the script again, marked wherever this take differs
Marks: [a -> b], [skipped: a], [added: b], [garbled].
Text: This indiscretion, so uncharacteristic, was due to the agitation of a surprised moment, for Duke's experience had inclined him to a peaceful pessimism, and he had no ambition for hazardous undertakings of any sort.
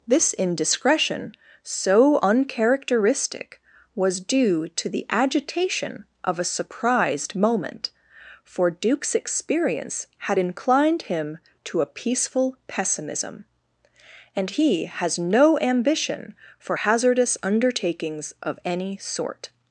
This indiscretion, so uncharacteristic, was due to the agitation of a surprised moment, for Duke's experience had inclined him to a peaceful pessimism, and he [had -> has] no ambition for hazardous undertakings of any sort.